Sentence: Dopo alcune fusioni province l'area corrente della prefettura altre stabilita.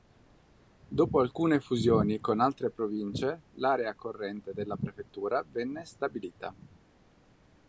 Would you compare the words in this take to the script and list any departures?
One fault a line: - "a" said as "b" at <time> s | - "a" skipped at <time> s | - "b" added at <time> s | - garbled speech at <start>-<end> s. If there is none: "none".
- "con altre" added at 2.2 s
- "altre" said as "venne" at 5.5 s